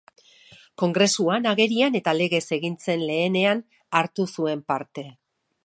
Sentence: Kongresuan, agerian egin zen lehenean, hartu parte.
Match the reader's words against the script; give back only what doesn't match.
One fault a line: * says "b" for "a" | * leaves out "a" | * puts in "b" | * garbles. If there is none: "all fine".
* puts in "eta legez"
* puts in "zuen"